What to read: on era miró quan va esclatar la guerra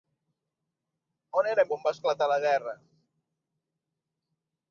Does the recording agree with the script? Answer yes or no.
no